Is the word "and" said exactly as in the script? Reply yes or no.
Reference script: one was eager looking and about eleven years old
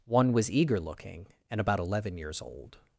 yes